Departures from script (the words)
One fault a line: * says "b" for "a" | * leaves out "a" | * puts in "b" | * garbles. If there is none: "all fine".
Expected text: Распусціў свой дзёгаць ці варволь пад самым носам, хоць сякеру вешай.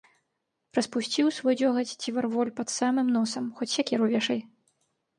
all fine